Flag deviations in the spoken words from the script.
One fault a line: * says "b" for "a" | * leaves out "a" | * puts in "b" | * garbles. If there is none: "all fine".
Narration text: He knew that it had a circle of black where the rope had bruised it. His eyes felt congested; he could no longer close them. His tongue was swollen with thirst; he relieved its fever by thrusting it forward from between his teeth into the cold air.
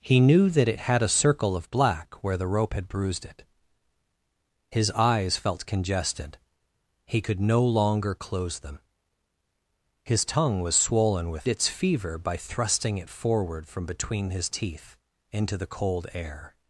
* leaves out "thirst he relieved"